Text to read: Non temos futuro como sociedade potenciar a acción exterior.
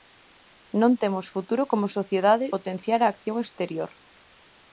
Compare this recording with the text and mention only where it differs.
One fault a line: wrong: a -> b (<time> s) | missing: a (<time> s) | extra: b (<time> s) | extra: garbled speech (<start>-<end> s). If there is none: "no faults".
no faults